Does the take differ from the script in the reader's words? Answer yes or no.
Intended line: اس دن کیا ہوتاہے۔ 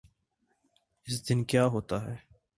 no